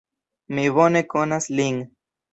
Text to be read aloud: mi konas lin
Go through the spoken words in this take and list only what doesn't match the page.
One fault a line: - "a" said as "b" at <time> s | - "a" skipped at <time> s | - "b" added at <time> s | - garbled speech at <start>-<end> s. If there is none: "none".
- "bone" added at 0.8 s